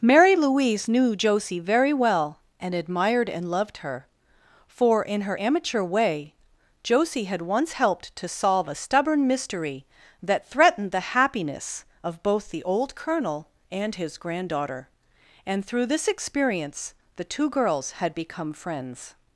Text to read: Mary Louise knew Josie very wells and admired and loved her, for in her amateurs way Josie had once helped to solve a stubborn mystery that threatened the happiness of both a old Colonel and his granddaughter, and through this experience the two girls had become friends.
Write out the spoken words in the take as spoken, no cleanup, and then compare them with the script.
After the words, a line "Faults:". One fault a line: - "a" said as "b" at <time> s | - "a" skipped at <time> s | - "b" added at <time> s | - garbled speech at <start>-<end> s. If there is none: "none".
Mary Louise knew Josie very well and admired and loved her, for in her amateur way Josie had once helped to solve a stubborn mystery that threatened the happiness of both the old Colonel and his granddaughter, and through this experience the two girls had become friends.
Faults:
- "wells" said as "well" at 1.9 s
- "amateurs" said as "amateur" at 5.4 s
- "a" said as "the" at 12.5 s